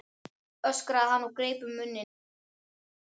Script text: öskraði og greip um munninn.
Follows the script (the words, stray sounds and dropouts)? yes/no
no